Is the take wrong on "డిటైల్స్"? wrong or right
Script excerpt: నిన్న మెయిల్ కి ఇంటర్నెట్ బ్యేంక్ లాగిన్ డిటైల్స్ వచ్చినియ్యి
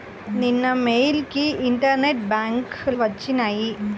wrong